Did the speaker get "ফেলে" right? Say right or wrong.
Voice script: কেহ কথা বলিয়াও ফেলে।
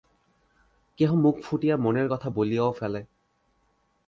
right